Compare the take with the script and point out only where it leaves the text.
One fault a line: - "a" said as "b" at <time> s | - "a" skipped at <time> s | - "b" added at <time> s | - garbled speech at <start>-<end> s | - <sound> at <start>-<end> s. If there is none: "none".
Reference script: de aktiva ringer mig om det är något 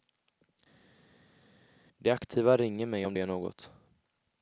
none